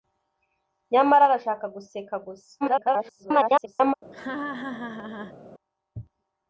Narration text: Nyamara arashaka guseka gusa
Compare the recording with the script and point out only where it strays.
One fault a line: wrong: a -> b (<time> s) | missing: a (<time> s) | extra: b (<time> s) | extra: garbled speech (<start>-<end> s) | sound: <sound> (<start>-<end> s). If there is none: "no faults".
extra: garbled speech (2.6-3.9 s)
sound: laugh (4.1-5.4 s)